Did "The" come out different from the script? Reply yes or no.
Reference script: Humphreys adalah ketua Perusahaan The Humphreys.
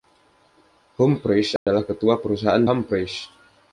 yes